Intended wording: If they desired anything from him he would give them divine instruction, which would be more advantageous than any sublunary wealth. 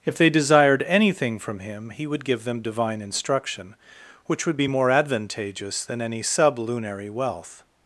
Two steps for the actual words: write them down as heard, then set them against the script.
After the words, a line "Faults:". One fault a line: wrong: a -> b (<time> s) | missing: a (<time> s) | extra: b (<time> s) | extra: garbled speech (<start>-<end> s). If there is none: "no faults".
If they desired anything from him he would give them divine instruction, which would be more advantageous than any sublunary wealth.
Faults:
no faults